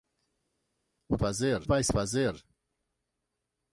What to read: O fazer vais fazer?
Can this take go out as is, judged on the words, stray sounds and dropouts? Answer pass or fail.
pass